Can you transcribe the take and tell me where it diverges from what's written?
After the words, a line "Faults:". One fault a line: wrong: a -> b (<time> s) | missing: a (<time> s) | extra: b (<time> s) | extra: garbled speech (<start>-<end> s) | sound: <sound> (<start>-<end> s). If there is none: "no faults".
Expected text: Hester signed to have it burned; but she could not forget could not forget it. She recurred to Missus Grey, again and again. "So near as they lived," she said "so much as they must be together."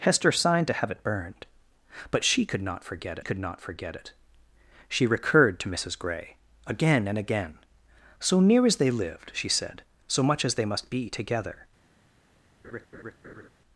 Hester signed to have it burned; but she could not forget could not forget it. She recurred to Missus Grey, again and again. "So near as they lived," she said "so much as they must be together."
Faults:
sound: laugh (12.6-13.5 s)